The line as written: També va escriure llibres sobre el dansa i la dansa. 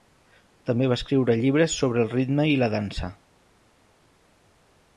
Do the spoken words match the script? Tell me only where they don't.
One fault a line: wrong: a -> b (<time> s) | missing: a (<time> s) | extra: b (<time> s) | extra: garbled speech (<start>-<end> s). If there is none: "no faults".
wrong: dansa -> ritme (2.1 s)